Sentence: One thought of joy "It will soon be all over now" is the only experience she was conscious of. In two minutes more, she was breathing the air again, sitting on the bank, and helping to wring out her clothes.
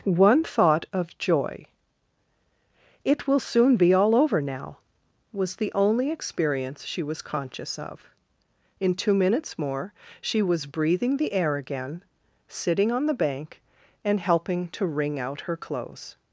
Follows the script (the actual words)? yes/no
no